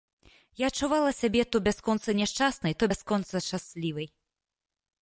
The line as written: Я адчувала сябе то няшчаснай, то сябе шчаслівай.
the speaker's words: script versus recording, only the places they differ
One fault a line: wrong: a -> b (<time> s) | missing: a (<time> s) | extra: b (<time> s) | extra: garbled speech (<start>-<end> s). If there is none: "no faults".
extra: бясконца (1.7 s)
wrong: сябе -> бясконца (2.9 s)